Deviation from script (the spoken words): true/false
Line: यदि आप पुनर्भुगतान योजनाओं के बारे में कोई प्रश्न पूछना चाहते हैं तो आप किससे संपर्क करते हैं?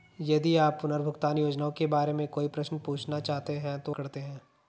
true